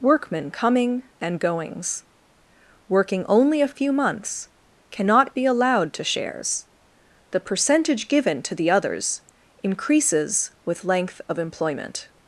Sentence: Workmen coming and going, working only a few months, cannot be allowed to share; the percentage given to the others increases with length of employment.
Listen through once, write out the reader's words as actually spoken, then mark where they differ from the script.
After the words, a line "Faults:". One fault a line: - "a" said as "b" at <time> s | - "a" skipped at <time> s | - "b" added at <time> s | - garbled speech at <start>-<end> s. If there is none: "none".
Workmen coming and goings, working only a few months, cannot be allowed to shares; the percentage given to the others increases with length of employment.
Faults:
- "going" said as "goings" at 1.4 s
- "share" said as "shares" at 6.0 s